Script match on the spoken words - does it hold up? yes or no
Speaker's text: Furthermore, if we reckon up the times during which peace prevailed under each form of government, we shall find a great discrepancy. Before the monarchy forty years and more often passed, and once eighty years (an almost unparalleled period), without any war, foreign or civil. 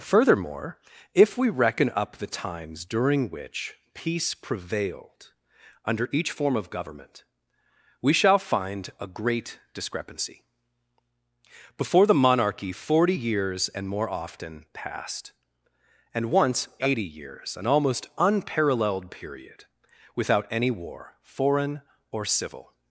yes